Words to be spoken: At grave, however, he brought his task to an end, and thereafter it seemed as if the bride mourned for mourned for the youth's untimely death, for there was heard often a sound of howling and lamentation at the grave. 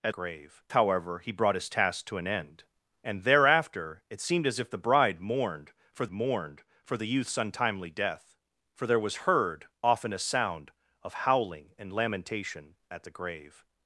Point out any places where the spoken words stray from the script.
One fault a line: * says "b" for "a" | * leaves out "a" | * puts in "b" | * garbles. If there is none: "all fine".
all fine